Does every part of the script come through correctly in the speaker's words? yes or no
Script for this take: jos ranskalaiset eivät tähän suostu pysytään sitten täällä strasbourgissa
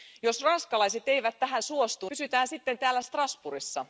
yes